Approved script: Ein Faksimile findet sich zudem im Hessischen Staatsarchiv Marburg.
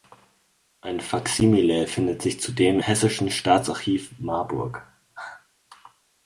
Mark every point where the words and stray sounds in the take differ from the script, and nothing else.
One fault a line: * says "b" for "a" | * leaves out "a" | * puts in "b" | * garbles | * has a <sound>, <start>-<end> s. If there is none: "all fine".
* leaves out "im"